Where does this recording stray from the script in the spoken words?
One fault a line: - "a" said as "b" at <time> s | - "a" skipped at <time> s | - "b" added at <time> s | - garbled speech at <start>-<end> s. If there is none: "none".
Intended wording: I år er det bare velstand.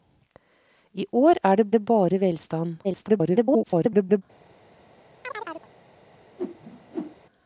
- "det" added at 1.7 s
- garbled speech at 2.8-4.2 s